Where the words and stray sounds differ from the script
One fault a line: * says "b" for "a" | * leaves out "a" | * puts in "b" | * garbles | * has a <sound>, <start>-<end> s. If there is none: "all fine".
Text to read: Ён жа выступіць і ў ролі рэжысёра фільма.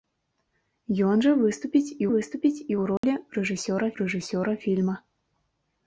* puts in "выступіць і"
* has a dropout, 3.0-3.0 s
* puts in "рэжысёра"